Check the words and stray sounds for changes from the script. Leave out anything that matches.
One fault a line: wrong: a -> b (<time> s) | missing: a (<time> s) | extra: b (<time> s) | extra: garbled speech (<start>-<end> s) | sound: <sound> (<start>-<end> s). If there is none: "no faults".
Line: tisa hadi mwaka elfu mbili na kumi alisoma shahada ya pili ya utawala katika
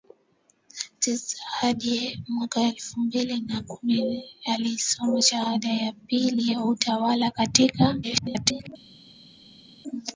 extra: garbled speech (8.0-8.7 s)